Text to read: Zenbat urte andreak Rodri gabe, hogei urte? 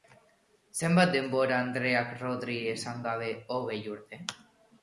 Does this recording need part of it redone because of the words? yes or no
yes